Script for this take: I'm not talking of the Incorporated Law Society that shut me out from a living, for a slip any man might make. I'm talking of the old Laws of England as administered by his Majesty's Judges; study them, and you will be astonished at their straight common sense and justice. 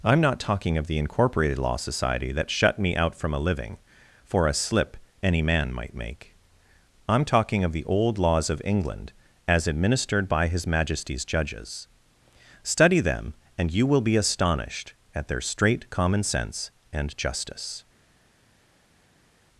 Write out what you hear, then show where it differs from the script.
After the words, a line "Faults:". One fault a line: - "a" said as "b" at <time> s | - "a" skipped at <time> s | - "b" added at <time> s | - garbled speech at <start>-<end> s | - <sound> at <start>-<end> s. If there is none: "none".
I'm not talking of the Incorporated Law Society that shut me out from a living, for a slip any man might make. I'm talking of the old Laws of England as administered by his Majesty's Judges; study them, and you will be astonished at their straight common sense and justice.
Faults:
none